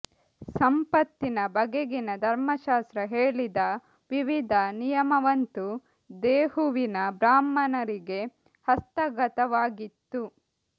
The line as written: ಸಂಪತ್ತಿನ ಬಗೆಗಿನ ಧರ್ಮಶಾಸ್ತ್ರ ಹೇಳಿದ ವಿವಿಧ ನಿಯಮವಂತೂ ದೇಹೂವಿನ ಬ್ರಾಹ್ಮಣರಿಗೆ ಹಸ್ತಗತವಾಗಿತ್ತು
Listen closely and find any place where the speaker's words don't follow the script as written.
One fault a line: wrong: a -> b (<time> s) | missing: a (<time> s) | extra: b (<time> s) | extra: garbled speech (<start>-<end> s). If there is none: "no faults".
no faults